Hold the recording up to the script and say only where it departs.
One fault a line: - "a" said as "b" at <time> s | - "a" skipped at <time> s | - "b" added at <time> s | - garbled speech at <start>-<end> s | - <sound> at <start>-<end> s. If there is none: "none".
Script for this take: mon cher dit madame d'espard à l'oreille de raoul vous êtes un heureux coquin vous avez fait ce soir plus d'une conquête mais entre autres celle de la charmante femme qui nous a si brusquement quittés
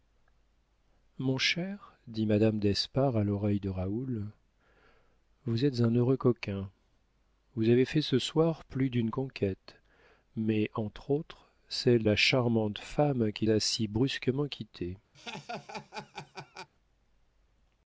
- "de" skipped at 12.0 s
- "nous" skipped at 13.5 s
- laugh at 15.1-16.7 s